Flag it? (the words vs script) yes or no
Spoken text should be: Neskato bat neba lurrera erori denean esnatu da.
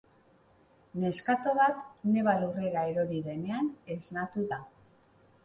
no